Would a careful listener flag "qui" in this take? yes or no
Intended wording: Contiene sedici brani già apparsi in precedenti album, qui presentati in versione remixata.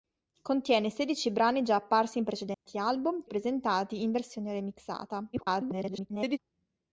yes